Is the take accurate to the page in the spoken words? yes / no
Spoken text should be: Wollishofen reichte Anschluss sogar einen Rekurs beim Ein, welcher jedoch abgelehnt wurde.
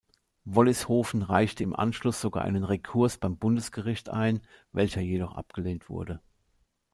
no